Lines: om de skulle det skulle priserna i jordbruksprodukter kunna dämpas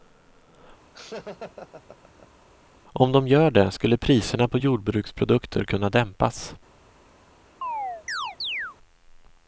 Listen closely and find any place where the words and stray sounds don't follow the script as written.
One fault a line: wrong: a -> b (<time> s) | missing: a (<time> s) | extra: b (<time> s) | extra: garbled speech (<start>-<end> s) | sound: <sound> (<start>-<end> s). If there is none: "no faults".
sound: laugh (0.9-2.4 s)
wrong: skulle -> gör (3.3 s)
wrong: i -> på (4.5 s)
sound: chirp (7.6-8.8 s)